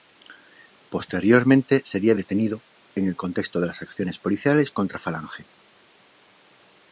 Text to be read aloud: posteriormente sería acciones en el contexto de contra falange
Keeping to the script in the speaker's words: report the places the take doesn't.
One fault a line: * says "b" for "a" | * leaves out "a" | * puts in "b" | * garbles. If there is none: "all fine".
* says "detenido" for "acciones"
* puts in "las acciones policiales"